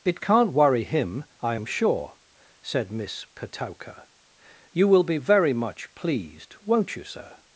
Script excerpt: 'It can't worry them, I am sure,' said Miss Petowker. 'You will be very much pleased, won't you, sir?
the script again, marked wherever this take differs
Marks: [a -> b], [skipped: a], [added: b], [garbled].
'It can't worry [them, -> him] I am sure,' said Miss Petowker. 'You will be very much pleased, won't you, sir?